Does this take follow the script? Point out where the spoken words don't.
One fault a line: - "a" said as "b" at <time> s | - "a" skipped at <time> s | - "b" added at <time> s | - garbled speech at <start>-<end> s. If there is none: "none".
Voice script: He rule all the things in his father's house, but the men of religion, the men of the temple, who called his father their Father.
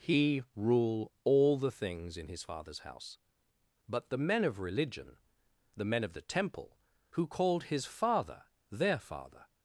none